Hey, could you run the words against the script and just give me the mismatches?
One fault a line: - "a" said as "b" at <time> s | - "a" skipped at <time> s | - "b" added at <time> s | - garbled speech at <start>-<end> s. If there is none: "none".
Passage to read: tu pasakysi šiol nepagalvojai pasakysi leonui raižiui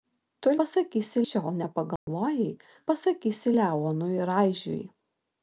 none